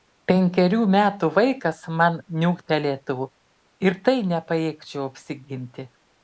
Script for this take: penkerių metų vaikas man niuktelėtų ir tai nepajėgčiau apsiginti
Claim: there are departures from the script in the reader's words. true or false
false